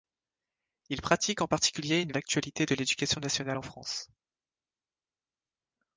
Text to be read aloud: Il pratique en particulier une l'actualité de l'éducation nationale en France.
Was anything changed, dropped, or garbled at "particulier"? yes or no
no